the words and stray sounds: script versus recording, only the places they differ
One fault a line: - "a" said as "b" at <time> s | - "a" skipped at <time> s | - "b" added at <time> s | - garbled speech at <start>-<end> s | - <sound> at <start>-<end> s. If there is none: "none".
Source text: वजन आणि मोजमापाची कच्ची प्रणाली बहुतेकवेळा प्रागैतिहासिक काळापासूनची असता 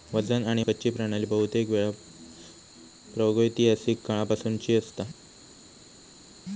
- "मोजमापाची" skipped at 0.6 s